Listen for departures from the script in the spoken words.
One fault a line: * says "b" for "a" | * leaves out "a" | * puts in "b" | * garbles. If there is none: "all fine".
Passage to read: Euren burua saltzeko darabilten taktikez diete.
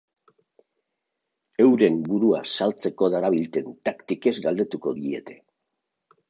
* puts in "galdetuko"